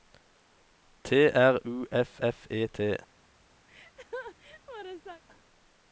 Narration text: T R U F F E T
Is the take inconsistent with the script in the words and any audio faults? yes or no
yes